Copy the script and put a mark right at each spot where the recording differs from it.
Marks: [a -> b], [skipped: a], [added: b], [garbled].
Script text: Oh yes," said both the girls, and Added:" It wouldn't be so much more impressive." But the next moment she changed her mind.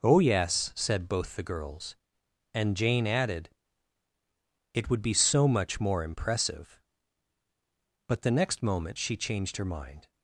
Oh yes," said both the girls, and [added: Jane] Added:" It [wouldn't -> would] be so much more impressive." But the next moment she changed her mind.